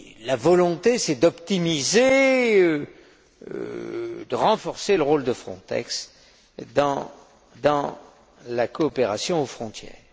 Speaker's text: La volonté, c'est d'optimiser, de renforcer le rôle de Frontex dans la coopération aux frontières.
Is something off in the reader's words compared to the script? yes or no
yes